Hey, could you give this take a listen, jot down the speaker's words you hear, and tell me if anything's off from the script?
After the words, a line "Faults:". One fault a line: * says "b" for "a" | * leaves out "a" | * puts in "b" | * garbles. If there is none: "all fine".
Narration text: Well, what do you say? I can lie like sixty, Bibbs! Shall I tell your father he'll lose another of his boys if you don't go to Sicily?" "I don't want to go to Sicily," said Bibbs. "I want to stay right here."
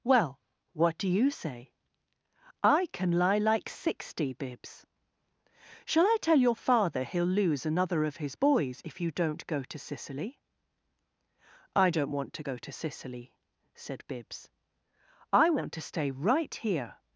Well, what do you say? I can lie like sixty, Bibbs! Shall I tell your father he'll lose another of his boys if you don't go to Sicily?" "I don't want to go to Sicily," said Bibbs. "I want to stay right here."
Faults:
all fine